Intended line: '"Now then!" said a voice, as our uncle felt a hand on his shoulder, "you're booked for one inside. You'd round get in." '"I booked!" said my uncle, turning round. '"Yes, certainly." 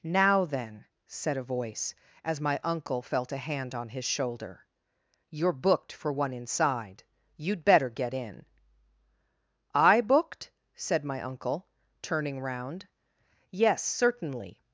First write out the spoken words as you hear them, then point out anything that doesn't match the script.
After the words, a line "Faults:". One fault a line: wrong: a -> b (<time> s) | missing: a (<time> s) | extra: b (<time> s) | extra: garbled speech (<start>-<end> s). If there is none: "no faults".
'"Now then!" said a voice, as my uncle felt a hand on his shoulder, "you're booked for one inside. You'd better get in." '"I booked!" said my uncle, turning round. '"Yes, certainly."
Faults:
wrong: our -> my (2.4 s)
wrong: round -> better (7.6 s)